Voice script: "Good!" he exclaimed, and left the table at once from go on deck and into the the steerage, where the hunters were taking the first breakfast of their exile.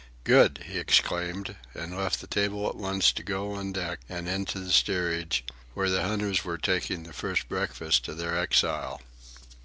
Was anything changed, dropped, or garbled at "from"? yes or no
yes